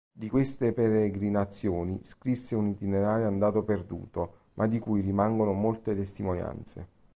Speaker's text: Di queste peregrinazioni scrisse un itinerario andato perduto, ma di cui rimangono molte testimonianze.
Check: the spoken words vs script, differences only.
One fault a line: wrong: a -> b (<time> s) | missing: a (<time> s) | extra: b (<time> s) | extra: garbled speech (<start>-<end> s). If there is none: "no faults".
no faults